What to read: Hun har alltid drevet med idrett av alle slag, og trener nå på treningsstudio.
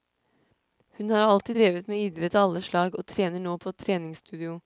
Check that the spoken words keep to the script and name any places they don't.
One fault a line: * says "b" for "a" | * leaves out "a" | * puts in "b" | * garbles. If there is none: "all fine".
all fine